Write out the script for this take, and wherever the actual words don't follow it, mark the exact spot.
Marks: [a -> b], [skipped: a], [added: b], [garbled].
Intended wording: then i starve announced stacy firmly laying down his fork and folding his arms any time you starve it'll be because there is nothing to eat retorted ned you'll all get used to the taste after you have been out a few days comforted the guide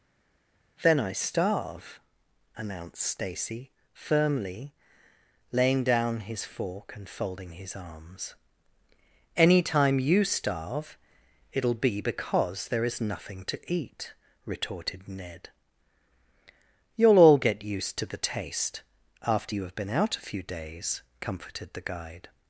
then i starve announced stacy firmly laying down his fork and folding his arms any time you starve it'll be because there is nothing to eat retorted ned you'll all get used to the taste after you have been out a few days comforted the guide